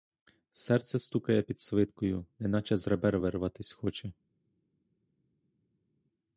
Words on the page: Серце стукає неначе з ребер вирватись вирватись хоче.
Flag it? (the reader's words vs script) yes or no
yes